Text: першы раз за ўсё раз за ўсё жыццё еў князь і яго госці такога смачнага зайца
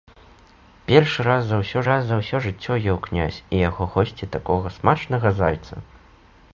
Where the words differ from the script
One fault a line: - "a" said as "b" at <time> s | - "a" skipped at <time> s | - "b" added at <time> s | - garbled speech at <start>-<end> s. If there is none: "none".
none